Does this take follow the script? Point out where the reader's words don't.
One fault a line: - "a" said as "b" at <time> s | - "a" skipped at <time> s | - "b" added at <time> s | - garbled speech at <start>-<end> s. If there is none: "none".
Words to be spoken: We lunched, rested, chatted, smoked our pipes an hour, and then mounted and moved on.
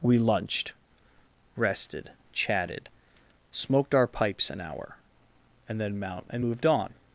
- "mounted" said as "mount" at 6.0 s